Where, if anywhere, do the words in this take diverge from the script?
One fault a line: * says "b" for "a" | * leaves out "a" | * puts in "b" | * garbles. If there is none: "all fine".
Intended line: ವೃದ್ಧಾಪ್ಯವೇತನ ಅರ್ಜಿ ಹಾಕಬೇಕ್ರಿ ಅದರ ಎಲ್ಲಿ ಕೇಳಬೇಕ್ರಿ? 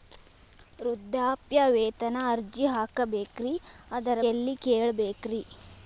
all fine